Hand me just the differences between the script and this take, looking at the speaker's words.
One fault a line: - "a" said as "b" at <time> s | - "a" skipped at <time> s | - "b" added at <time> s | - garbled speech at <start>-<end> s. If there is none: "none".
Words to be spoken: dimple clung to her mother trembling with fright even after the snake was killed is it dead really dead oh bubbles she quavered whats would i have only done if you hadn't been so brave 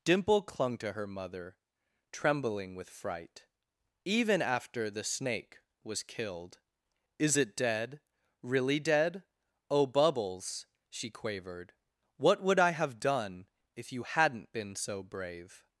- "whats" said as "what" at 12.2 s
- "only" skipped at 13.0 s